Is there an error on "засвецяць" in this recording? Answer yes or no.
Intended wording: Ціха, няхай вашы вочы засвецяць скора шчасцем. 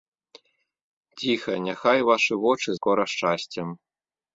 yes